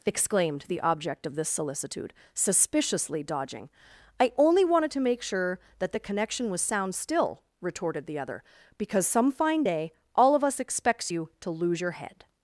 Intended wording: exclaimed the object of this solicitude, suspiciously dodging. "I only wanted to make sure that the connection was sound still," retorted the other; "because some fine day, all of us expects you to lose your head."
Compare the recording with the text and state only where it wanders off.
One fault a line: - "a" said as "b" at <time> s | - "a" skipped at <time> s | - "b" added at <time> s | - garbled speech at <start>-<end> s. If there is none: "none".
none